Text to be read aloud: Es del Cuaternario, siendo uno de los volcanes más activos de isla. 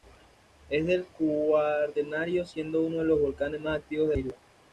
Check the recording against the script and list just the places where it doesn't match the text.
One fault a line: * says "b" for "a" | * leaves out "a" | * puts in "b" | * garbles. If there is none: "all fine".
all fine